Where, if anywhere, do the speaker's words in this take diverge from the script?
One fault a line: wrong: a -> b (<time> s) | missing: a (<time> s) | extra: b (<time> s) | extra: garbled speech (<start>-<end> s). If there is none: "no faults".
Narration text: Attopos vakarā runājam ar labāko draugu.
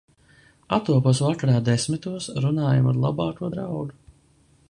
extra: desmitos (1.7 s)